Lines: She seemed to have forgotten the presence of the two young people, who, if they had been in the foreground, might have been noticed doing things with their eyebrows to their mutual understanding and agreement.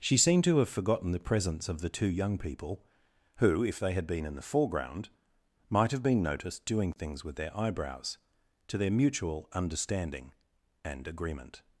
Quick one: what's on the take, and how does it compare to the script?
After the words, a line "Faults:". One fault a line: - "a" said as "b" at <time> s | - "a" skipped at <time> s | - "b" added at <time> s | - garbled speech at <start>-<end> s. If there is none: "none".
She seemed to have forgotten the presence of the two young people, who, if they had been in the foreground, might have been noticed doing things with their eyebrows to their mutual understanding and agreement.
Faults:
none